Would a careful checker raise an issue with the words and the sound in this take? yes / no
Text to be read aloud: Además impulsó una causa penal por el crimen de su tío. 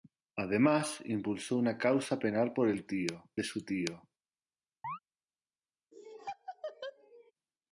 yes